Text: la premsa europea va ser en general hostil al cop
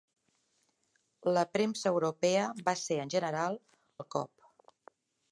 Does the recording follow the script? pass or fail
fail